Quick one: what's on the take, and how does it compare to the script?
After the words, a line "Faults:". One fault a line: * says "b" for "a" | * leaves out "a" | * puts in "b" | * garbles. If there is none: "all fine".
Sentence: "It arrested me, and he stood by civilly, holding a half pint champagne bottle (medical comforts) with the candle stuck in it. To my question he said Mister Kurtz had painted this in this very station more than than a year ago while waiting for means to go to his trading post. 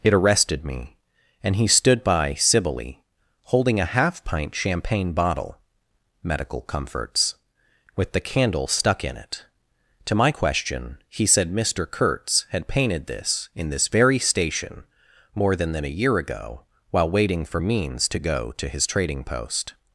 "It arrested me, and he stood by civilly, holding a half pint champagne bottle (medical comforts) with the candle stuck in it. To my question he said Mister Kurtz had painted this in this very station more than than a year ago while waiting for means to go to his trading post.
Faults:
all fine